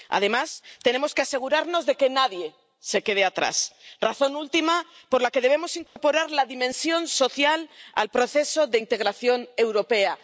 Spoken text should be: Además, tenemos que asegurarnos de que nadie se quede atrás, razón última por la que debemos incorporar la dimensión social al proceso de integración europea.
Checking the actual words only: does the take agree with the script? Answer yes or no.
yes